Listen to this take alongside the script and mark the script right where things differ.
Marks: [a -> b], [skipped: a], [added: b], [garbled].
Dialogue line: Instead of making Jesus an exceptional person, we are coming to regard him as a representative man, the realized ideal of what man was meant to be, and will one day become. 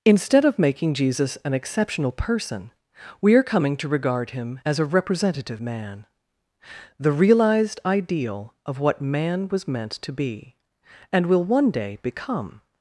Instead of making Jesus an exceptional person, we are coming to regard him as a representative man, the realized ideal of what man was meant to be, and will one day become.